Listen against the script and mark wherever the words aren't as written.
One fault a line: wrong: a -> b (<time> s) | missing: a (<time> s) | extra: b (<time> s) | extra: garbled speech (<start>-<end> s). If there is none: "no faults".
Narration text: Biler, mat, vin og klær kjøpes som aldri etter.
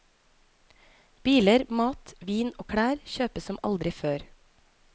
wrong: etter -> før (4.0 s)